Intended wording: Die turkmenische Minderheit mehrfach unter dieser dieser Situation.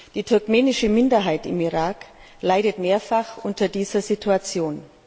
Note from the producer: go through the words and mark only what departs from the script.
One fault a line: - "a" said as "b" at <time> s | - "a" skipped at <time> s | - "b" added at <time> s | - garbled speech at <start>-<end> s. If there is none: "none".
- "im Irak leidet" added at 1.4 s
- "dieser" skipped at 4.0 s